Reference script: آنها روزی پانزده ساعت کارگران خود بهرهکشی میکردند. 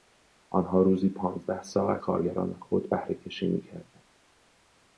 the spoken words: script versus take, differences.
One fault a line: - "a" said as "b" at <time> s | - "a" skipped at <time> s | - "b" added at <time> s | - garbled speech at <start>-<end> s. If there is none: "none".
none